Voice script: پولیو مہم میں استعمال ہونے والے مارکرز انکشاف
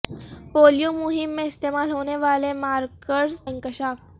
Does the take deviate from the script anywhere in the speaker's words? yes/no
no